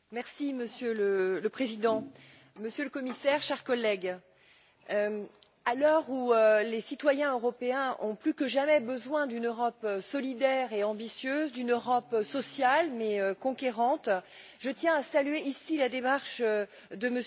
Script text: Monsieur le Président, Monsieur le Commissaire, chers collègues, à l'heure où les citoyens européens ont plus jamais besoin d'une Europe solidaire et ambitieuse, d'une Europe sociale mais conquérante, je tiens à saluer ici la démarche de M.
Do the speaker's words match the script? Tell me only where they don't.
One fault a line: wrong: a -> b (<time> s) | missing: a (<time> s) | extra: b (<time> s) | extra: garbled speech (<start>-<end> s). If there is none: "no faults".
extra: que (8.3 s)